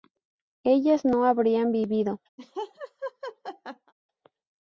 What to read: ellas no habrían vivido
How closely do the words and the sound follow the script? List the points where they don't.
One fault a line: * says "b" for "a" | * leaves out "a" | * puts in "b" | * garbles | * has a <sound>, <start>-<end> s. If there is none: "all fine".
* has a laugh, 2.4-3.9 s